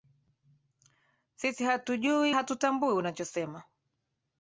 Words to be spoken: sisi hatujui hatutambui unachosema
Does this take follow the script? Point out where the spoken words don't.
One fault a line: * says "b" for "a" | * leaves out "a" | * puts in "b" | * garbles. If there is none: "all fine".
all fine